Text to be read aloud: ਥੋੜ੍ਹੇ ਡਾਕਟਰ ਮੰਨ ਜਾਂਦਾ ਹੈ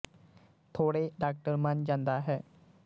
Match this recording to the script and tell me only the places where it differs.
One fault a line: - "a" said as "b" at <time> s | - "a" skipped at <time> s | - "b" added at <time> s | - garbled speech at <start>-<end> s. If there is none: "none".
none